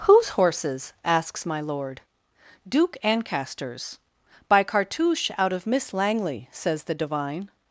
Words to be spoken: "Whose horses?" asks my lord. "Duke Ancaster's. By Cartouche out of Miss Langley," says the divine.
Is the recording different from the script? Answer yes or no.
no